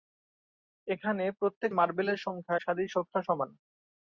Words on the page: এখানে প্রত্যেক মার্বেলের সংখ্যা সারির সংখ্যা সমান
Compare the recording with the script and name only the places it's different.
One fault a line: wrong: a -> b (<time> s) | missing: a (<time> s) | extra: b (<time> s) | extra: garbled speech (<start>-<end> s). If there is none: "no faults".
no faults